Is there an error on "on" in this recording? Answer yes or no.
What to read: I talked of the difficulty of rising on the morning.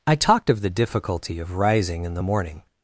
yes